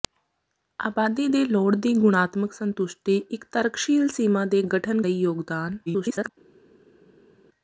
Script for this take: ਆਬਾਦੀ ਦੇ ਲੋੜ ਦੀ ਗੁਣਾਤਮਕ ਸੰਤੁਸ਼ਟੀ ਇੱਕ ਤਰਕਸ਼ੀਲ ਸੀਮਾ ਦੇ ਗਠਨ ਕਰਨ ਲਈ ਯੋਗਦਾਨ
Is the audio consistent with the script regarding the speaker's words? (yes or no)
no